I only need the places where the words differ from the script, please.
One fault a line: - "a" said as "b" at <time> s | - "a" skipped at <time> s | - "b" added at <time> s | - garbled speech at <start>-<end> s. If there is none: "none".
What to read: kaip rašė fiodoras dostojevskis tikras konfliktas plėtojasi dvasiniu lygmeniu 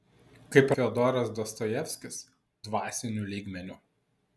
- "rašė" skipped at 0.7 s
- "tikras konfliktas plėtojasi" skipped at 2.2 s